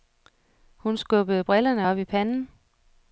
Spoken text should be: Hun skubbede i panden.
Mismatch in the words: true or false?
true